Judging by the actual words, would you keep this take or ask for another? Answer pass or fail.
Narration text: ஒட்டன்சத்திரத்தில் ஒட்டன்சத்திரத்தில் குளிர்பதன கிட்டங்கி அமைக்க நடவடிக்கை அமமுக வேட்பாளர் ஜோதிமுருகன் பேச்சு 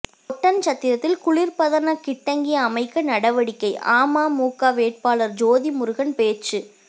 fail